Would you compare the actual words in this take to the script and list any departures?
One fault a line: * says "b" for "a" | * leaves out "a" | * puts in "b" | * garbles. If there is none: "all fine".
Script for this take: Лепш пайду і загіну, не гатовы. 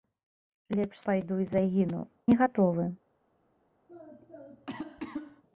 all fine